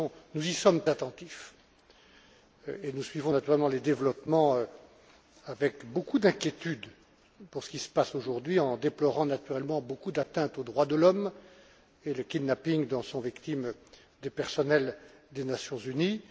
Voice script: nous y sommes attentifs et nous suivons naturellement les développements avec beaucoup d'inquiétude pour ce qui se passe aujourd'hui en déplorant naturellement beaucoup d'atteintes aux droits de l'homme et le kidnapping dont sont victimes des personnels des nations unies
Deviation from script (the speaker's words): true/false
false